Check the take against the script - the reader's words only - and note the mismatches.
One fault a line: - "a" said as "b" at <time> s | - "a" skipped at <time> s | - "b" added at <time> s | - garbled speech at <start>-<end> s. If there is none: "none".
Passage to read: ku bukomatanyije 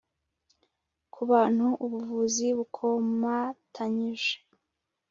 - "bantu ubuvuzi" added at 1.3 s